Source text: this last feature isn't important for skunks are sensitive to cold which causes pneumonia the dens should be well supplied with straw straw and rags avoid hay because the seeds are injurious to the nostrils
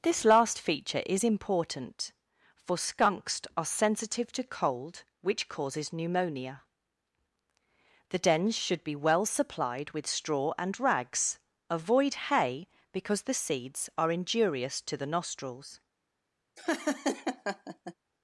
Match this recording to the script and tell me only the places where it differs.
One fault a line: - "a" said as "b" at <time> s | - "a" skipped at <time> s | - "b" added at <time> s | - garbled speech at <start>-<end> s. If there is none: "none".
- "isn't" said as "is" at 1.1 s
- "straw" skipped at 10.5 s